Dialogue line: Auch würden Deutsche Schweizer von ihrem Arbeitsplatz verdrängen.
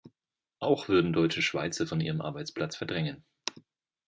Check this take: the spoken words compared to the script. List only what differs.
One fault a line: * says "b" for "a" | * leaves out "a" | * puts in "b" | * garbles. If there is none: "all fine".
all fine